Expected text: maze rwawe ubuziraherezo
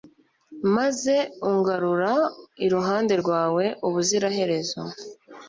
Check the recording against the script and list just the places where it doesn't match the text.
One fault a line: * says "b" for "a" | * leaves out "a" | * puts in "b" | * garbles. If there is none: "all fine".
* puts in "ungarura iruhande"